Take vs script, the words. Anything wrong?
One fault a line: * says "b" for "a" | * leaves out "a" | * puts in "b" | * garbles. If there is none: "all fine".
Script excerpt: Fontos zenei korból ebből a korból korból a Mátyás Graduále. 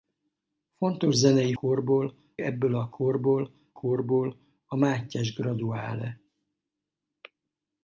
all fine